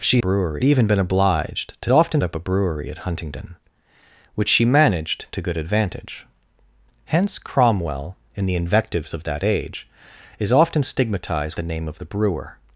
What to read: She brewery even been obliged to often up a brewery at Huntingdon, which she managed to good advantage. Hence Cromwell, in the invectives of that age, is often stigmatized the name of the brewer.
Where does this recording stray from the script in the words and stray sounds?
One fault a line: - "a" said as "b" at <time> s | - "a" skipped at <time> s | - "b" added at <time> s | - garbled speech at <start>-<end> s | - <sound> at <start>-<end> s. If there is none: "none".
none